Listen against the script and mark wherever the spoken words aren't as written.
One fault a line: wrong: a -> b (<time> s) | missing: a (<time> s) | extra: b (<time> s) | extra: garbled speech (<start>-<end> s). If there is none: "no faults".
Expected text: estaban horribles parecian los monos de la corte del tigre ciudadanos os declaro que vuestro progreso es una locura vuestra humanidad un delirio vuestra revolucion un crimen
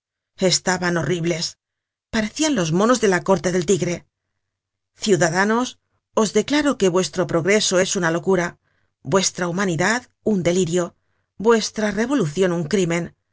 no faults